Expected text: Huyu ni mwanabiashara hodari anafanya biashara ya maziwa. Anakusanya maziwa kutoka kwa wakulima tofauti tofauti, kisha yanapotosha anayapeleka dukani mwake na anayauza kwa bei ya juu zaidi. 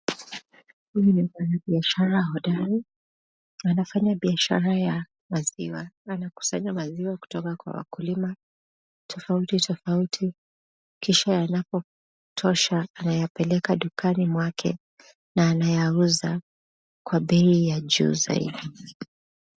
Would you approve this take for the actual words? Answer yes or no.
yes